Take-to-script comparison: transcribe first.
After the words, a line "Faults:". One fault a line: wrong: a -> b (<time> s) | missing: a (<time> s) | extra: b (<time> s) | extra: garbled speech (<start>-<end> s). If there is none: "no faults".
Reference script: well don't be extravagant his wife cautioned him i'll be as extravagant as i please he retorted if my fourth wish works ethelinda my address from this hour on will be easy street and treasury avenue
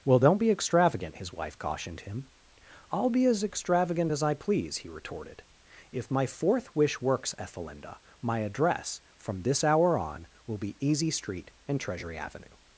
well don't be extravagant his wife cautioned him i'll be as extravagant as i please he retorted if my fourth wish works ethelinda my address from this hour on will be easy street and treasury avenue
Faults:
no faults